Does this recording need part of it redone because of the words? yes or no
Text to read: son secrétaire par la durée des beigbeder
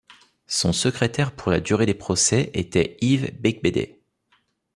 yes